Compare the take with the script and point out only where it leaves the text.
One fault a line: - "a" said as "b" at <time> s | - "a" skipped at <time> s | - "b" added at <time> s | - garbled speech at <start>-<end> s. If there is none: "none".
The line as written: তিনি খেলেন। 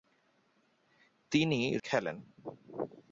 none